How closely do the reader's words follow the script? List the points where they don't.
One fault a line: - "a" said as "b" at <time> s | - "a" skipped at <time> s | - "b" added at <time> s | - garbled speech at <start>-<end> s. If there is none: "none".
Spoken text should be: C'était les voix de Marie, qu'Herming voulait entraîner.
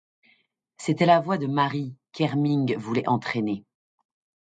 - "les" said as "la" at 1.1 s